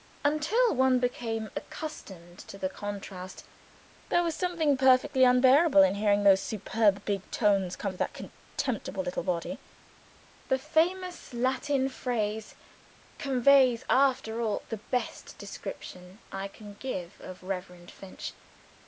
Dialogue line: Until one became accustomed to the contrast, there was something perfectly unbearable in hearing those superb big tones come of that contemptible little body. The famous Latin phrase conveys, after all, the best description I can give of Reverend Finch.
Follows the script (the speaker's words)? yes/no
yes